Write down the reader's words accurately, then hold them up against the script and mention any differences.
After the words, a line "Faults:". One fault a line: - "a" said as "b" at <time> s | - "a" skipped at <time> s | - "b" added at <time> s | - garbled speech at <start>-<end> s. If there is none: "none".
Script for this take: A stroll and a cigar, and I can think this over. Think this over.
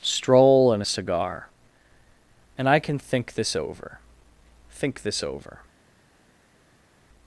stroll and a cigar, and I can think this over. Think this over.
Faults:
- "A" skipped at 0.0 s